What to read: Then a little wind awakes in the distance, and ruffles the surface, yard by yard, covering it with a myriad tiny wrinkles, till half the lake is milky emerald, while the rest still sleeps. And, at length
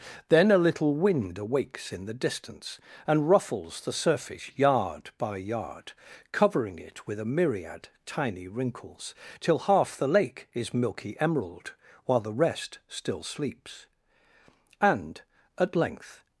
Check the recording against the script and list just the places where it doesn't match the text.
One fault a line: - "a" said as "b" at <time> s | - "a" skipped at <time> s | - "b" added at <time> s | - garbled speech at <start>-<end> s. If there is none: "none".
none